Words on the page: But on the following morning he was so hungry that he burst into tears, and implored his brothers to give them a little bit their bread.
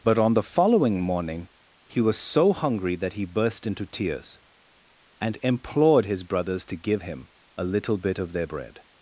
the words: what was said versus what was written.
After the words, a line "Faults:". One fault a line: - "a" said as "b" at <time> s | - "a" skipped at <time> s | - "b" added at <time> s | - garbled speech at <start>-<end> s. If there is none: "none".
But on the following morning he was so hungry that he burst into tears, and implored his brothers to give him a little bit of their bread.
Faults:
- "them" said as "him" at 7.0 s
- "of" added at 8.2 s